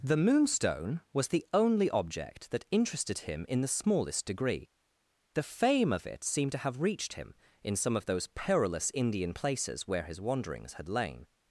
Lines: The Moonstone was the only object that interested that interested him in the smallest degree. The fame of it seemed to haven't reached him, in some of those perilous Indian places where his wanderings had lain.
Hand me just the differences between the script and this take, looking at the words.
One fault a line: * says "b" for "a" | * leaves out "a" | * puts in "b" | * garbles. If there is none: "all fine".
* leaves out "that interested"
* says "have" for "haven't"